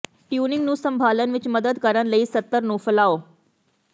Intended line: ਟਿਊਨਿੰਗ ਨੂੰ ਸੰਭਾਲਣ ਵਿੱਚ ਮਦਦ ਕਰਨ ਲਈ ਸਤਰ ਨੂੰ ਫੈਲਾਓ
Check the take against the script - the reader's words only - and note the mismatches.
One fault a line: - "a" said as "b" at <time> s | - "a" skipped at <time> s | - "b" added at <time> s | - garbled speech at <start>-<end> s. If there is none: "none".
none